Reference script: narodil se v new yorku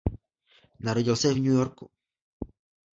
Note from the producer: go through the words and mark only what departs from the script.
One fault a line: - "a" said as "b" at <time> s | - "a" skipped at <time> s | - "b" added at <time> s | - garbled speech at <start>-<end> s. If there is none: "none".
none